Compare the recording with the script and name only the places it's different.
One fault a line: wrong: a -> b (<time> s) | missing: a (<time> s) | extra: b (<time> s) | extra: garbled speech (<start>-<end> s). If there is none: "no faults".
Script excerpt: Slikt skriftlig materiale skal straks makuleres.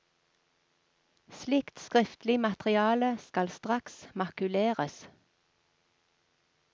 no faults